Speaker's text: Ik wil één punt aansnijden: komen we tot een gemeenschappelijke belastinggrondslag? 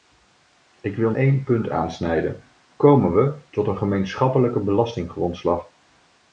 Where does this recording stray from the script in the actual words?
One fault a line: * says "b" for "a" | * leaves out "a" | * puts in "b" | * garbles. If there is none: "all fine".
all fine